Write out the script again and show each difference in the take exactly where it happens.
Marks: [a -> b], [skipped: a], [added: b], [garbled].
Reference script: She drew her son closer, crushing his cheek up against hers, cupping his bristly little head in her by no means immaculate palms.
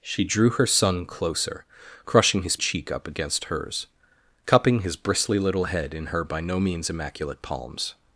She drew her son closer, crushing his cheek up against hers, cupping his bristly little head in her by no means immaculate palms.